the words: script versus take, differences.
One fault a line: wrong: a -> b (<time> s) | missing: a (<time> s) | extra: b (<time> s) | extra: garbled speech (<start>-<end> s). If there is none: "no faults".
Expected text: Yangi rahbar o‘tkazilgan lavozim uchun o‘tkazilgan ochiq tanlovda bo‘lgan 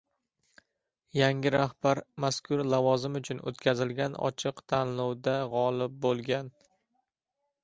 wrong: o‘tkazilgan -> mazkur (2.2 s)
extra: g‘olib (5.5 s)